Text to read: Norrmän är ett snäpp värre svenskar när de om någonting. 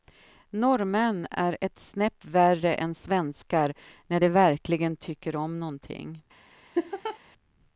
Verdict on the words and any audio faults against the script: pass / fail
fail